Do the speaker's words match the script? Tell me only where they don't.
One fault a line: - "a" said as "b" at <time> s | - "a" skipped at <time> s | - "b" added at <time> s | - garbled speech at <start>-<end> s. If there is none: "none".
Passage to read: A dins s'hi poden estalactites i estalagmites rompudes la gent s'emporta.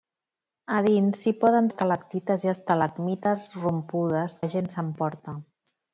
none